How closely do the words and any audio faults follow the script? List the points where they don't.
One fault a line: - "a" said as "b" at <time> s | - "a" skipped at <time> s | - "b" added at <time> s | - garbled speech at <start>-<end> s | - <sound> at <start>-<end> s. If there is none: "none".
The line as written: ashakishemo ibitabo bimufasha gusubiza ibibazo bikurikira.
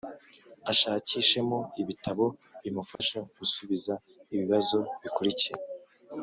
- dropout at 3.0-3.0 s